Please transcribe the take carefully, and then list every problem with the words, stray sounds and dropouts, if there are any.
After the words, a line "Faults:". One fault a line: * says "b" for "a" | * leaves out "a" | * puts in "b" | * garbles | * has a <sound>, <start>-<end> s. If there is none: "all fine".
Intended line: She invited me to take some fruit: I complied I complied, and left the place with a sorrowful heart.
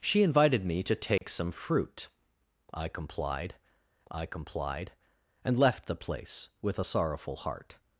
She invited me to take some fruit: I complied I complied, and left the place with a sorrowful heart.
Faults:
* has a dropout, 1.2-1.2 s